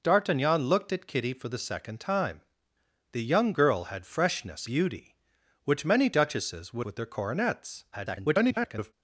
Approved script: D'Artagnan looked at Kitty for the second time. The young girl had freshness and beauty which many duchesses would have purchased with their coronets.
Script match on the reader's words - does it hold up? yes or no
no